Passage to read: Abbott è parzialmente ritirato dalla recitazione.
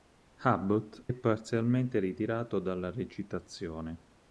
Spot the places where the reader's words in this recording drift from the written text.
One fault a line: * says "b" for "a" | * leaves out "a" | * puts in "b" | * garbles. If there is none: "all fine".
all fine